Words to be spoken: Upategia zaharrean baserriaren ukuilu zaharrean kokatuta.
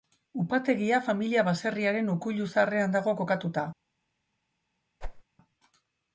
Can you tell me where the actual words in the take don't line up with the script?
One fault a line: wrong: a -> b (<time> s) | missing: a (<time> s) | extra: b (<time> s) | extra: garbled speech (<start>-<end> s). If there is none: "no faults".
wrong: zaharrean -> familia (1.1 s)
extra: dago (3.0 s)